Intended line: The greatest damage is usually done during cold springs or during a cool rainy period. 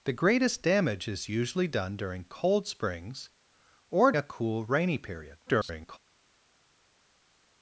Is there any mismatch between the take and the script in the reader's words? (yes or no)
yes